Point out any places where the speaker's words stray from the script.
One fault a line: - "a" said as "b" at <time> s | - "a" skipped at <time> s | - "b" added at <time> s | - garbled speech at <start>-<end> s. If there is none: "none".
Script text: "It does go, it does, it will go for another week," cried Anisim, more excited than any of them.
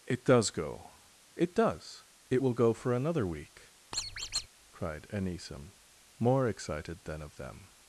- "any" skipped at 7.2 s